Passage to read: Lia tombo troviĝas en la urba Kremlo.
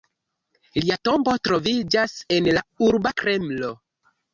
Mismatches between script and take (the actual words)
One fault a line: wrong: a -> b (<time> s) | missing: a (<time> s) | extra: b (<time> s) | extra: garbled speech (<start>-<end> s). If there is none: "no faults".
no faults